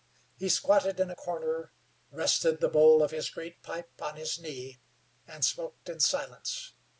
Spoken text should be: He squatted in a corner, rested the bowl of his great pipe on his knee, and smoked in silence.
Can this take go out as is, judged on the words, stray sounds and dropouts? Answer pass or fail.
pass